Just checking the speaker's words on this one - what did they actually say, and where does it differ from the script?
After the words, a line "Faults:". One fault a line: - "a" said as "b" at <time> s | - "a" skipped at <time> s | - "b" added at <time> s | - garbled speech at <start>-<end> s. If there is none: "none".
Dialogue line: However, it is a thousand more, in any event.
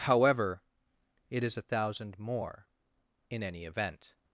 However, it is a thousand more, in any event.
Faults:
none